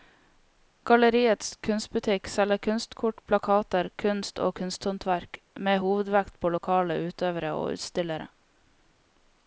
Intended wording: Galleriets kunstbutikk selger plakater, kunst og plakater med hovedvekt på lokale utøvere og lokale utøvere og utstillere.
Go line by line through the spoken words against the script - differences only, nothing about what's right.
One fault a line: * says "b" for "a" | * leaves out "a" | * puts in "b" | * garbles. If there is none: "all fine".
* puts in "kunstkort"
* says "kunsthåndverk" for "plakater"
* leaves out "lokale utøvere og"